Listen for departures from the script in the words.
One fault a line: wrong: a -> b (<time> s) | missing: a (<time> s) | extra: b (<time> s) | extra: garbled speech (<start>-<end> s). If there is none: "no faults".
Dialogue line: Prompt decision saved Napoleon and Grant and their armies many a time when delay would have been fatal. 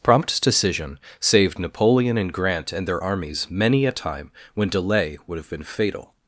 no faults